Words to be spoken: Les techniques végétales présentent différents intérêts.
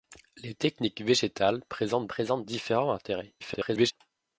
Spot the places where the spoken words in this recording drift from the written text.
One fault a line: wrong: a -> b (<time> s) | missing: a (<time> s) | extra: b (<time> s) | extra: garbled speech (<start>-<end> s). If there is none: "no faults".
extra: présentent (2.1 s)
extra: garbled speech (3.4-3.9 s)